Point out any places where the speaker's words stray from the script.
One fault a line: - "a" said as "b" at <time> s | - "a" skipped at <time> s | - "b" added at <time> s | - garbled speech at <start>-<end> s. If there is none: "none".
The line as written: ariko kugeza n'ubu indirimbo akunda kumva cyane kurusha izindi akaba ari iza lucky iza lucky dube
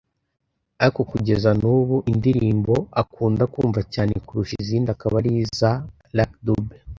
- "iza lucky" skipped at 6.4 s